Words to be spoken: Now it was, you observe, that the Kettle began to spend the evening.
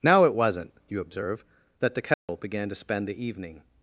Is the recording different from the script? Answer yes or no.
yes